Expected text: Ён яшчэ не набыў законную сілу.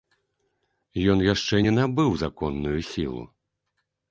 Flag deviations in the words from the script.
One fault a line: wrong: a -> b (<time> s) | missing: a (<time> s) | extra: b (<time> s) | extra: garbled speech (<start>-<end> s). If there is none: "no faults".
no faults